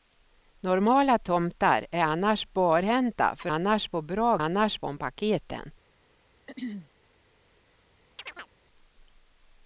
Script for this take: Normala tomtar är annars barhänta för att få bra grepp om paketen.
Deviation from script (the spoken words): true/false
true